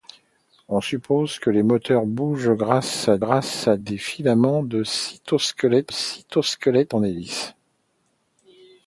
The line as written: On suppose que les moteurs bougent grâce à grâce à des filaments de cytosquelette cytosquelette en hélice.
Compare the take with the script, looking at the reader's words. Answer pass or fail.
pass